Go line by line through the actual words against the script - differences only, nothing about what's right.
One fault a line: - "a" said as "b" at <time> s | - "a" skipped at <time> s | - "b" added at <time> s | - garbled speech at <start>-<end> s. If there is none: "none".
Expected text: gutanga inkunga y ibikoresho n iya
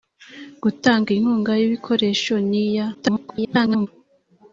- garbled speech at 2.9-3.9 s